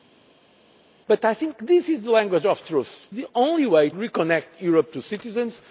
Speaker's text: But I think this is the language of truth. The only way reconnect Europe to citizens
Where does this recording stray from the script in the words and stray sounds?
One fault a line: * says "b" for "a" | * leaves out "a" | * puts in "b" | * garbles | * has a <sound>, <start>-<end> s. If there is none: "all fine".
all fine